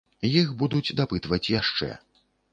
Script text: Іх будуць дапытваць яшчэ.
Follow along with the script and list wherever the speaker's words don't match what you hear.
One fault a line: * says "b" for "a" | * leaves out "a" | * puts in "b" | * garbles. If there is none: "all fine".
all fine